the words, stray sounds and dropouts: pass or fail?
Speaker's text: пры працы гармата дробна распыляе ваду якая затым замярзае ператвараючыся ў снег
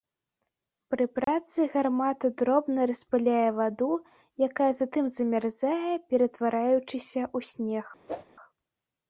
fail